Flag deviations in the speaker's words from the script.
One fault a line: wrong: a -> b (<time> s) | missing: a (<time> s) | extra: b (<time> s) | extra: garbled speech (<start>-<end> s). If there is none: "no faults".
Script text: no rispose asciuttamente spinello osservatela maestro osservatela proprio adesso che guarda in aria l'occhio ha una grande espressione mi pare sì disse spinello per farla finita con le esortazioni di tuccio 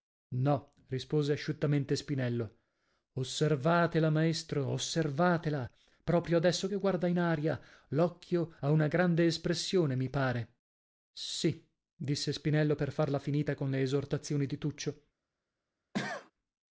no faults